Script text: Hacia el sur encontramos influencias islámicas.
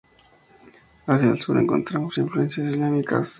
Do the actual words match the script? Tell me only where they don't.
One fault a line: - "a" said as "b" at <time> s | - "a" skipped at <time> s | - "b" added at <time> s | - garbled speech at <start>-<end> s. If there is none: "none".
none